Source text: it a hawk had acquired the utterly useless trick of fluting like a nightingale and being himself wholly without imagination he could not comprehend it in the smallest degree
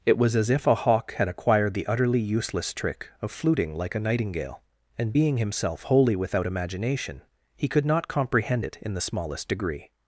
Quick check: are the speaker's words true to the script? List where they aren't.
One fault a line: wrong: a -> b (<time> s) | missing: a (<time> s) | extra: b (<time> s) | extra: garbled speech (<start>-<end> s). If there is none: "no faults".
extra: was as if (0.2 s)